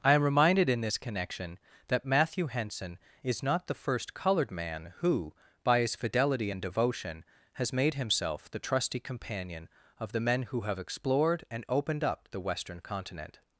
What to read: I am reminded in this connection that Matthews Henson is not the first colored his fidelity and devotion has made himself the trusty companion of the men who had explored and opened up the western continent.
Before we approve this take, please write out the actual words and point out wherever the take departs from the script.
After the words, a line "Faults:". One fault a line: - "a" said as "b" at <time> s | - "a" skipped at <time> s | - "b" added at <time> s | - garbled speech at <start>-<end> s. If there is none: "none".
I am reminded in this connection that Matthew Henson is not the first colored man who by his fidelity and devotion has made himself the trusty companion of the men who have explored and opened up the western continent.
Faults:
- "Matthews" said as "Matthew" at 2.0 s
- "man who by" added at 4.5 s
- "had" said as "have" at 10.6 s